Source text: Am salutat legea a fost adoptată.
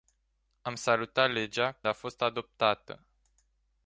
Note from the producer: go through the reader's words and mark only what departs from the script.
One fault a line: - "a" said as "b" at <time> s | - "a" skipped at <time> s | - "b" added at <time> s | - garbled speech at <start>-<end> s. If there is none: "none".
none